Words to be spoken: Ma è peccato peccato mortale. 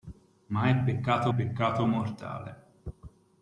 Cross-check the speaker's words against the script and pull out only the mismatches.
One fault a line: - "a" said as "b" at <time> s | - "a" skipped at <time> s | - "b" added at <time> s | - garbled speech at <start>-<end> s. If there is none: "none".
none